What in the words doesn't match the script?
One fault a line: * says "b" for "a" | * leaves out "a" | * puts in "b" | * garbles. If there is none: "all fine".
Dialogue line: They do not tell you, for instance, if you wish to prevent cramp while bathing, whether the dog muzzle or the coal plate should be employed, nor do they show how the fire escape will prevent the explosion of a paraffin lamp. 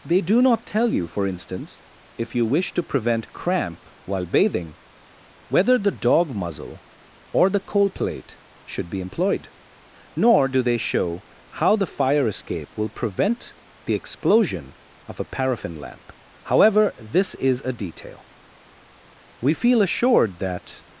* puts in "However this is a detail We feel assured that"